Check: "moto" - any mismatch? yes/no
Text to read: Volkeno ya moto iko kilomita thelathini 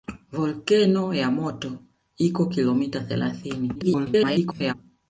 no